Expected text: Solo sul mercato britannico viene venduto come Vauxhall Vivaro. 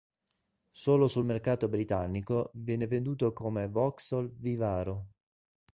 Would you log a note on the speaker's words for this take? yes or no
no